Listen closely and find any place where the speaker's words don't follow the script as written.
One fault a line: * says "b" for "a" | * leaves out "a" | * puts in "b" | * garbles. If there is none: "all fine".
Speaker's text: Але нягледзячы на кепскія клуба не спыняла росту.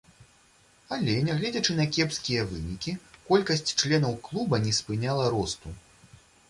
* puts in "вынікі колькасць членаў"